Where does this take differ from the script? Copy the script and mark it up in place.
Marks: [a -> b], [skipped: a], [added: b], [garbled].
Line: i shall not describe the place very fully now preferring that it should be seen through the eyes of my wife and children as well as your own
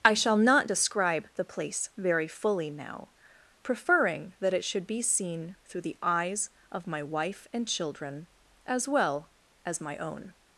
i shall not describe the place very fully now preferring that it should be seen through the eyes of my wife and children as well as [your -> my] own